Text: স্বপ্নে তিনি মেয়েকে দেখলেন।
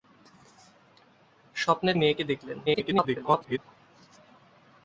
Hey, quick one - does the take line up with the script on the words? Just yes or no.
no